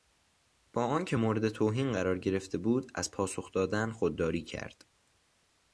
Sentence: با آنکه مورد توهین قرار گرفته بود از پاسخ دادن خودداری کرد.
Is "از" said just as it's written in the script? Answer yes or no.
yes